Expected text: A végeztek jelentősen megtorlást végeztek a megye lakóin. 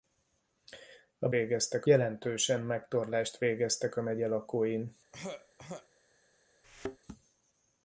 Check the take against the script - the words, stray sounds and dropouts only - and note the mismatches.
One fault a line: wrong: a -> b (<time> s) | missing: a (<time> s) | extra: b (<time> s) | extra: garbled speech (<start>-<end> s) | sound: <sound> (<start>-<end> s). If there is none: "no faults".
sound: throat clearing (5.1-5.9 s)
sound: thud (6.6-7.0 s)